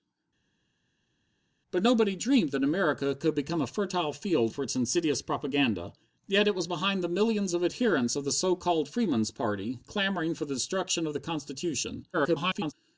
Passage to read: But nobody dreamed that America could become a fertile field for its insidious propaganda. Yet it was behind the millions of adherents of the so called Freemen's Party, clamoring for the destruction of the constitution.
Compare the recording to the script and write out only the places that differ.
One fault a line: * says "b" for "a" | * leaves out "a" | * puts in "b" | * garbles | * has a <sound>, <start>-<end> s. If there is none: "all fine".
* garbles